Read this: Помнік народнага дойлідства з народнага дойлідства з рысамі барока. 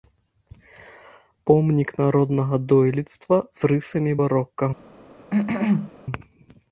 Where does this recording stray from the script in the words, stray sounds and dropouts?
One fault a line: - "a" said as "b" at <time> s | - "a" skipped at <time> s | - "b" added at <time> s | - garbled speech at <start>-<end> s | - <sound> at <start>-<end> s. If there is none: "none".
- "народнага дойлідства з" skipped at 3.7 s
- cough at 5.3-5.9 s